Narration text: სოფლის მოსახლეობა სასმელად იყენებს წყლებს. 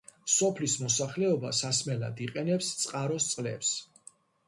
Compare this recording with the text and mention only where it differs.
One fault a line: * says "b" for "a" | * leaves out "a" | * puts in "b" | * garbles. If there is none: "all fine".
* puts in "წყაროს"